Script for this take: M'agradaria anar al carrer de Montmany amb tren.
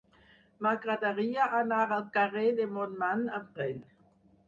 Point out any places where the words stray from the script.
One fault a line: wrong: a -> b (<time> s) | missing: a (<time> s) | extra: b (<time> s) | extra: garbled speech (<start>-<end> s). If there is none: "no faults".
no faults